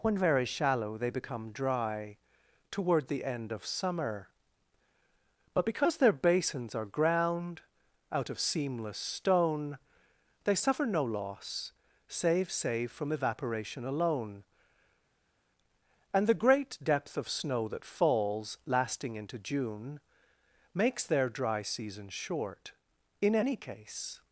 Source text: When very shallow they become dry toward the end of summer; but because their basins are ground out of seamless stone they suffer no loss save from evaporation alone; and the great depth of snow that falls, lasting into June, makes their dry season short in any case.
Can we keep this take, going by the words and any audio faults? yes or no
no